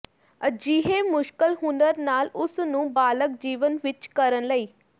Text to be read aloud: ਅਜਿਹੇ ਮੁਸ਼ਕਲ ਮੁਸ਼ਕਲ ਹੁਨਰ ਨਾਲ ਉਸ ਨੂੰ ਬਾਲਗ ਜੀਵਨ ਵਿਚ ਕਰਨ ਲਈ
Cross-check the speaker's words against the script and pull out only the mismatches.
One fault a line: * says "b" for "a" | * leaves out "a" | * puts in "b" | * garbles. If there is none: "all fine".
* leaves out "ਮੁਸ਼ਕਲ"